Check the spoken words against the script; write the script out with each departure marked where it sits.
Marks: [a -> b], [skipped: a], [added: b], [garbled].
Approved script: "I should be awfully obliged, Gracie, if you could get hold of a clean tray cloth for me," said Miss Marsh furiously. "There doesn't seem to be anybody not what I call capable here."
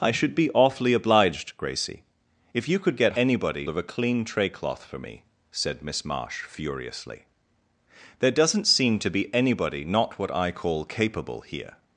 "I should be awfully obliged, Gracie, if you could get [hold -> anybody] of a clean tray cloth for me," said Miss Marsh furiously. "There doesn't seem to be anybody not what I call capable here."